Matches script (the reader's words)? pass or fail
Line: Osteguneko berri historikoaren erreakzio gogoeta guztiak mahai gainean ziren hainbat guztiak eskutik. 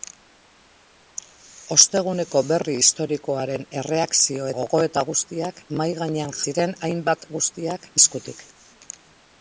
pass